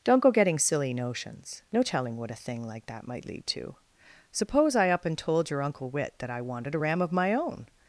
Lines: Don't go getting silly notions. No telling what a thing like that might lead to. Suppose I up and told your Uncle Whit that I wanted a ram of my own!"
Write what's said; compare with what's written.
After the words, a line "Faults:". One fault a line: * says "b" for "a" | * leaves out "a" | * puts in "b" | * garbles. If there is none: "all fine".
Don't go getting silly notions. No telling what a thing like that might lead to. Suppose I up and told your Uncle Whit that I wanted a ram of my own!"
Faults:
all fine